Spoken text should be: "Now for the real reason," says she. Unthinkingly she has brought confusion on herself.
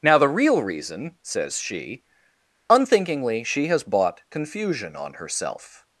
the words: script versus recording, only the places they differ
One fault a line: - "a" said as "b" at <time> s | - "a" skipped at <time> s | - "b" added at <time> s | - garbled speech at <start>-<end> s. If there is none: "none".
- "for" skipped at 0.2 s
- "brought" said as "bought" at 3.8 s